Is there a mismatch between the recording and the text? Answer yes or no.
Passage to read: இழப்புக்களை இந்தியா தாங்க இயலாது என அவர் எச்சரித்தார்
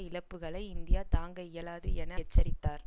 yes